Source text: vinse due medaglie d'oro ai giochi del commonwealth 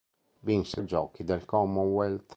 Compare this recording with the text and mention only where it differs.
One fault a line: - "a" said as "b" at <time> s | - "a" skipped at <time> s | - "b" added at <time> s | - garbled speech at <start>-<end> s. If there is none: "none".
- "due medaglie d'oro" skipped at 0.8 s